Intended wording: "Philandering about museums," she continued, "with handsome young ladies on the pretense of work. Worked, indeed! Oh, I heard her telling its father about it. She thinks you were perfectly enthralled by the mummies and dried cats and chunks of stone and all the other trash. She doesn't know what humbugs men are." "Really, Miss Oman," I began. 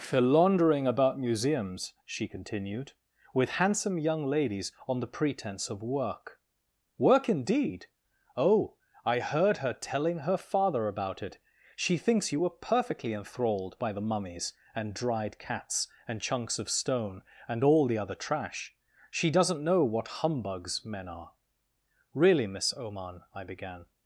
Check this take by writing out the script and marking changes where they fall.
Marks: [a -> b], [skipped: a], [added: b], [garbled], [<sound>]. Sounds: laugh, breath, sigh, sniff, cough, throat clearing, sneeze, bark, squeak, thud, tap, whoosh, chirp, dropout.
"Philandering about museums," she continued, "with handsome young ladies on the pretense of work. [Worked, -> Work] indeed! Oh, I heard her telling [its -> her] father about it. She thinks you were perfectly enthralled by the mummies and dried cats and chunks of stone and all the other trash. She doesn't know what humbugs men are." "Really, Miss Oman," I began.